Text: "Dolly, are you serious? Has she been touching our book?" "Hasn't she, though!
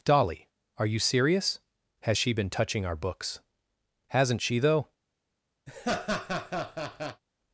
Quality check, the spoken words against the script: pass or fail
fail